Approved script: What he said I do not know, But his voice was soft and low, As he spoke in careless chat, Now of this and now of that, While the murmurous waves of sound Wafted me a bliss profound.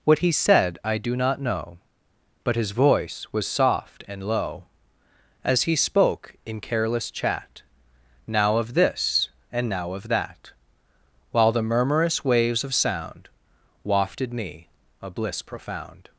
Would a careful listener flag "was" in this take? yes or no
no